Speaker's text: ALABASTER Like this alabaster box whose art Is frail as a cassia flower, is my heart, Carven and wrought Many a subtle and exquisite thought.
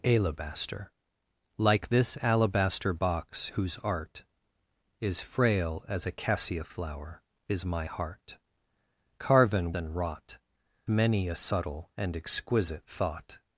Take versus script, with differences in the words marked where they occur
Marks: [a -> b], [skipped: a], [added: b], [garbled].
ALABASTER Like this alabaster box whose art Is frail as a cassia flower, is my heart, Carven and wrought Many a subtle and exquisite thought.